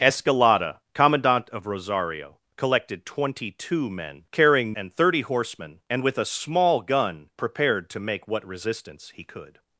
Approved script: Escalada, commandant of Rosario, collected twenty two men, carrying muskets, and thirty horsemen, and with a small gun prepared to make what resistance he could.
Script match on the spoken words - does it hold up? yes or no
no